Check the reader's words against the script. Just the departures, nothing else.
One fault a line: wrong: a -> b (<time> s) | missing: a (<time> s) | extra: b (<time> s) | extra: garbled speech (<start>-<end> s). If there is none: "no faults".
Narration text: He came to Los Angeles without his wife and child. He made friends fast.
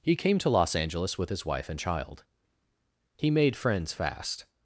wrong: without -> with (1.2 s)